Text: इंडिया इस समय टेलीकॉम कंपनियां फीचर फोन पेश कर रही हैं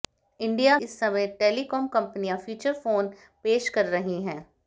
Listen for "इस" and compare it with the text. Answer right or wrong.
right